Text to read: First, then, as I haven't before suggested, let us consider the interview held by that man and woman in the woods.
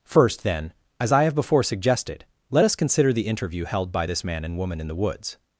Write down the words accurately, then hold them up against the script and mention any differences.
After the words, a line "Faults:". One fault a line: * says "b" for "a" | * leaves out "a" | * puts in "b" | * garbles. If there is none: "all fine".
First, then, as I have before suggested, let us consider the interview held by this man and woman in the woods.
Faults:
* says "have" for "haven't"
* says "this" for "that"